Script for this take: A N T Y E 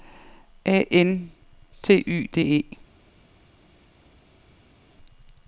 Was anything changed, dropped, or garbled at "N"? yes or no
no